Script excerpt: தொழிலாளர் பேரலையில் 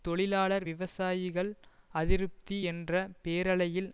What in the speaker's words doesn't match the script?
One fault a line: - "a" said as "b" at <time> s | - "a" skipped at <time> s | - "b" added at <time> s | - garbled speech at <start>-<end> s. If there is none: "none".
- "விவசாயிகள் அதிருப்தி என்ற" added at 0.6 s